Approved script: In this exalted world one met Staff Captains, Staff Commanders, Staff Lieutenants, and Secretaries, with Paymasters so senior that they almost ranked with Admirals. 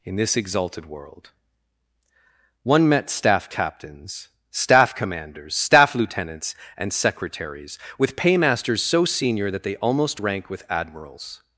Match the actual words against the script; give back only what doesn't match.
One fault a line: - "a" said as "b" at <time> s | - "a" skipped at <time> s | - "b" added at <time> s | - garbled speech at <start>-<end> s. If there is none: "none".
- "ranked" said as "rank" at 10.2 s